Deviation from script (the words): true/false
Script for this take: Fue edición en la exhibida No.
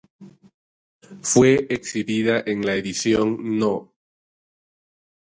true